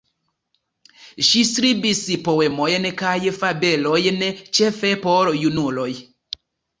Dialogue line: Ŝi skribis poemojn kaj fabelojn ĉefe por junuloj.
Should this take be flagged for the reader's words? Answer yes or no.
no